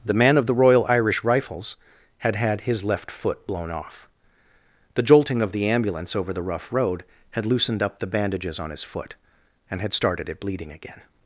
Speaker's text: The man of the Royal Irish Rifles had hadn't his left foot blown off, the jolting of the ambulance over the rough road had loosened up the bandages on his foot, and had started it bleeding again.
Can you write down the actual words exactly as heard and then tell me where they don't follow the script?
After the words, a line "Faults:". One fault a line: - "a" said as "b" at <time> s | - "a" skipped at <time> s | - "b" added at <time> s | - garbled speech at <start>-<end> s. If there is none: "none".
The man of the Royal Irish Rifles had had his left foot blown off, the jolting of the ambulance over the rough road had loosened up the bandages on his foot, and had started it bleeding again.
Faults:
- "hadn't" said as "had" at 2.4 s